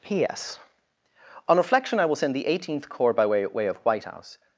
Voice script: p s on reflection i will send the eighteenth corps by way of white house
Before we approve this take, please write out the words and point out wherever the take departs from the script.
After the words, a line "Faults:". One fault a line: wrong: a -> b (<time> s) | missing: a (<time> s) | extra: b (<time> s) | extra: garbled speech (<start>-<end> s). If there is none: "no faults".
p s on reflection i will send the eighteenth corps by way way of white house
Faults:
extra: way (3.5 s)